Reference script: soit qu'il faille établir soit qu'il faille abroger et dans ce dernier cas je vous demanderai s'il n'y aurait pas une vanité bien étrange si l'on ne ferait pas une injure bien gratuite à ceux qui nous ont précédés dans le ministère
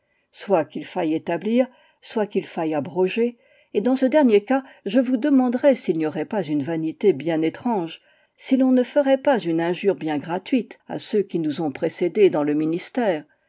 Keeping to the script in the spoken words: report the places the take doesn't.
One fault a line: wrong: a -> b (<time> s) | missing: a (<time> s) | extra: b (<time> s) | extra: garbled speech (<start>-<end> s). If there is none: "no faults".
no faults